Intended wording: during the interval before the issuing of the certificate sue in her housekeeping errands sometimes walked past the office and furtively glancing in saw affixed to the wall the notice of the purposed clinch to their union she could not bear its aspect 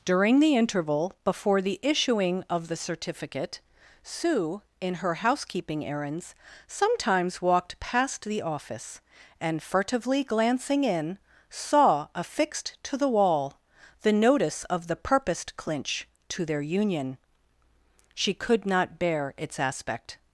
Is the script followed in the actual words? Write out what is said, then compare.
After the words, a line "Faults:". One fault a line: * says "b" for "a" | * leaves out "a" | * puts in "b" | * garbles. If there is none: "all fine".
during the interval before the issuing of the certificate sue in her housekeeping errands sometimes walked past the office and furtively glancing in saw affixed to the wall the notice of the purposed clinch to their union she could not bear its aspect
Faults:
all fine